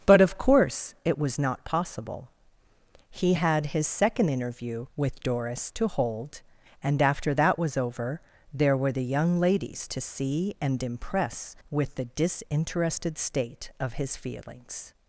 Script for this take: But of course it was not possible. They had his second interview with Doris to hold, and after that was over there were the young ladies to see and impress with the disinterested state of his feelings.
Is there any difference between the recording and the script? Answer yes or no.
yes